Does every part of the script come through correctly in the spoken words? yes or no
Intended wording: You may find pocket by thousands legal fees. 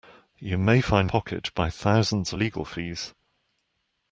yes